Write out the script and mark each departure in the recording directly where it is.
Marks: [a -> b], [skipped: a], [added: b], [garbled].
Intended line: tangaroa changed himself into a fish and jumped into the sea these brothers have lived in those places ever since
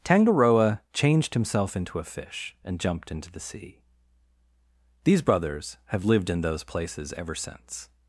tangaroa changed himself into a fish and jumped into the sea these brothers have lived in those places ever since